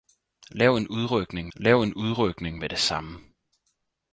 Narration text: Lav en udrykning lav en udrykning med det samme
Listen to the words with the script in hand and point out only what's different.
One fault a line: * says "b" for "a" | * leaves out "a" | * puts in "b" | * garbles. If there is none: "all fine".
all fine